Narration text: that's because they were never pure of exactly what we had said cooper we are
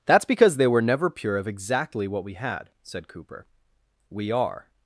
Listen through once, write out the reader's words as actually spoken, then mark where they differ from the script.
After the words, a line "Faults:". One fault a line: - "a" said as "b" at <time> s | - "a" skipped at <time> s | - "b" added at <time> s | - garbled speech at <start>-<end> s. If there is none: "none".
that's because they were never pure of exactly what we had said cooper we are
Faults:
none